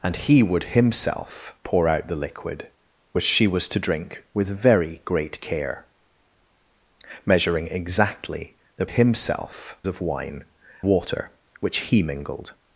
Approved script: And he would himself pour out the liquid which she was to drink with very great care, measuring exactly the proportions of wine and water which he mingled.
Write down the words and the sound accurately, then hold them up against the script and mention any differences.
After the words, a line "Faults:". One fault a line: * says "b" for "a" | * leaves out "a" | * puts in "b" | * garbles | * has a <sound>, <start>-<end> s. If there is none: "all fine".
And he would himself pour out the liquid which she was to drink with very great care, measuring exactly the himself of wine water which he mingled.
Faults:
* says "himself" for "proportions"
* leaves out "and"